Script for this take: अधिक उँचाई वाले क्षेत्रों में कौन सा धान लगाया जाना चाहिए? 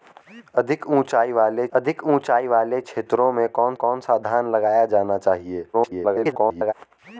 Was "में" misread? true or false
false